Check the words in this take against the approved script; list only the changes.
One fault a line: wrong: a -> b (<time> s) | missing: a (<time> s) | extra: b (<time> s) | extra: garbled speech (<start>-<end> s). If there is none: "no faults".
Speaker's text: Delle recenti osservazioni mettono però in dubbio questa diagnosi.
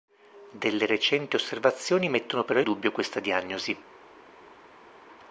missing: in (2.6 s)